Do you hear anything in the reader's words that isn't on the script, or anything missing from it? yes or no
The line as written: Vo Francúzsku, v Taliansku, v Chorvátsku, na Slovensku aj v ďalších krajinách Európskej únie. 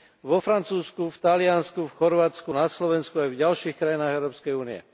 no